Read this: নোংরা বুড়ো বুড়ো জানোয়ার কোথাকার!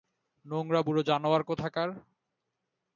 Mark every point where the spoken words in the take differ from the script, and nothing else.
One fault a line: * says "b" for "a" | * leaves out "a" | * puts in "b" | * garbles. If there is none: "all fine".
* leaves out "বুড়ো"